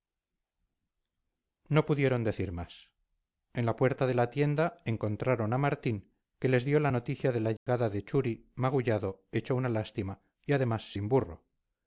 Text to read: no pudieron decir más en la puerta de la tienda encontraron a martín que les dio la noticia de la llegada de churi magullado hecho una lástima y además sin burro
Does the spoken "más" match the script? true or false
true